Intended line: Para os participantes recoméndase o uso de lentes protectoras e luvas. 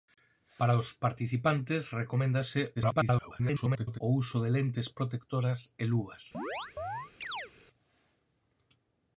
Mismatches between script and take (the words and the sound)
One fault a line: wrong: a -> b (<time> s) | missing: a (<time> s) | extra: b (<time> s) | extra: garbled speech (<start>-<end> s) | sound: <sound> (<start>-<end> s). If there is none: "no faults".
extra: garbled speech (2.7-4.0 s)
sound: chirp (6.3-7.5 s)